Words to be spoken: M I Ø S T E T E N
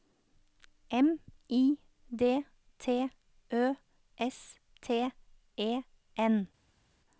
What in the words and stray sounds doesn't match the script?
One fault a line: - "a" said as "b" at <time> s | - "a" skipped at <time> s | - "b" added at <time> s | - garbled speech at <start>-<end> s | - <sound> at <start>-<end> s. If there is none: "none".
- "D T" added at 2.1 s
- "T E" skipped at 5.8 s